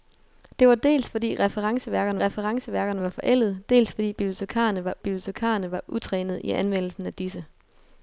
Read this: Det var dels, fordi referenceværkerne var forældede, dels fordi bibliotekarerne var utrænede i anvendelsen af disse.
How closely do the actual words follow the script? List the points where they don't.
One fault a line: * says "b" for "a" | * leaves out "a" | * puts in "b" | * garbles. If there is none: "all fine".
* puts in "referenceværkerne"
* puts in "bibliotekarerne var"